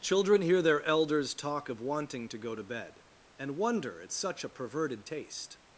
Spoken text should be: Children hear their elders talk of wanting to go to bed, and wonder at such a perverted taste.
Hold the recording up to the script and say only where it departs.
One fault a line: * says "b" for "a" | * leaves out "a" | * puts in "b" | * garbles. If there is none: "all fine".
all fine